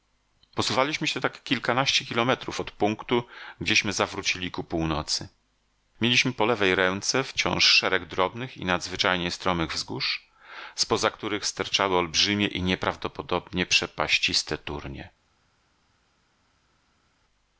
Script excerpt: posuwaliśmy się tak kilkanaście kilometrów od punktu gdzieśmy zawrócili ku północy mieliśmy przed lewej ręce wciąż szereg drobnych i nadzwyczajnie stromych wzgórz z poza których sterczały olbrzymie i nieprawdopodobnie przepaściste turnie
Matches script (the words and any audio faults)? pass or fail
fail